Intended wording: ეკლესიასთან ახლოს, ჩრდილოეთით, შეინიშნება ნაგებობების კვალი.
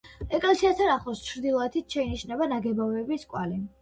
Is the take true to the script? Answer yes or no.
yes